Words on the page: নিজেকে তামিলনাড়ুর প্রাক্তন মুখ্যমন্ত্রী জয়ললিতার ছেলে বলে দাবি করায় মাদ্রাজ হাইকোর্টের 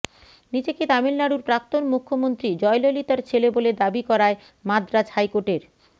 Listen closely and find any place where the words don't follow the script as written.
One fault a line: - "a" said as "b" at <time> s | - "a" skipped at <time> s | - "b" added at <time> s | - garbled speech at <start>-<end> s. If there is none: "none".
none